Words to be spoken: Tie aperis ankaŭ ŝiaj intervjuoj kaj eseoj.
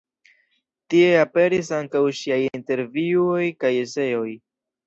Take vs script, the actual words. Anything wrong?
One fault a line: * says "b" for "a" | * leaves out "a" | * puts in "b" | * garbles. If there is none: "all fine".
all fine